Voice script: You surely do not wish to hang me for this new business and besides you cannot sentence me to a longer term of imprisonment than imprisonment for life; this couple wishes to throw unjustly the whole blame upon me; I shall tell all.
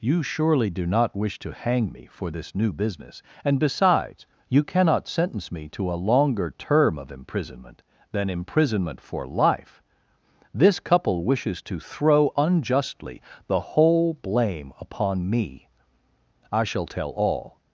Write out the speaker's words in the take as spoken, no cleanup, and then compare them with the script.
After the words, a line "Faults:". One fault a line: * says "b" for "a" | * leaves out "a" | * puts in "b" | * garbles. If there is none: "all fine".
You surely do not wish to hang me for this new business and besides you cannot sentence me to a longer term of imprisonment than imprisonment for life; this couple wishes to throw unjustly the whole blame upon me; I shall tell all.
Faults:
all fine